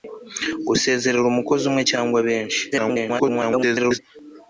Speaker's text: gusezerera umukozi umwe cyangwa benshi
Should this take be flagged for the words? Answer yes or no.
yes